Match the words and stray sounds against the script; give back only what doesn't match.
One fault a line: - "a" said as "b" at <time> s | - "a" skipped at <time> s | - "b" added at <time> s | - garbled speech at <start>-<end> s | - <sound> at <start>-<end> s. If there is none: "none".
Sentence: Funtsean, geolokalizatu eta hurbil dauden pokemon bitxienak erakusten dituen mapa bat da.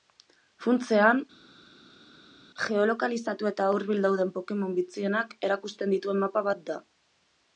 none